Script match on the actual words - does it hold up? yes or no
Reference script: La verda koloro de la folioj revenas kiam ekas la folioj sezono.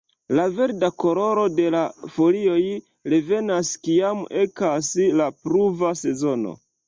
no